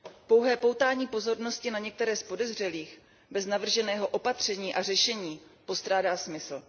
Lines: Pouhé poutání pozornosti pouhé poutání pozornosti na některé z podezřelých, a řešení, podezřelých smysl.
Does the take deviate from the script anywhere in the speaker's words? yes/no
yes